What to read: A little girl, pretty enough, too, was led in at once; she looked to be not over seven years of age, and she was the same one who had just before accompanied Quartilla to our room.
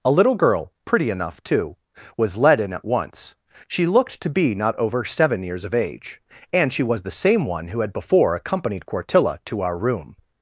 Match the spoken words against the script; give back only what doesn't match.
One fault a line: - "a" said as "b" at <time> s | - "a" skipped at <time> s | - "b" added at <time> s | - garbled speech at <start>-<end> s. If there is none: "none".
- "just" skipped at 7.9 s